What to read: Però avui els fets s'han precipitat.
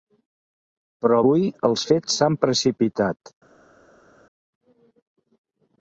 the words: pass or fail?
pass